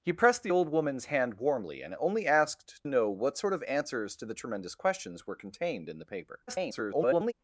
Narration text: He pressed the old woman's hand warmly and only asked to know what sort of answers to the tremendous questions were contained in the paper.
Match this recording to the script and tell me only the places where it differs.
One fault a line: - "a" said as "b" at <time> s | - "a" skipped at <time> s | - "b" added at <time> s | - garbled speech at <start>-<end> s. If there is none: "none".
- "to" skipped at 2.8 s
- garbled speech at 6.5-7.3 s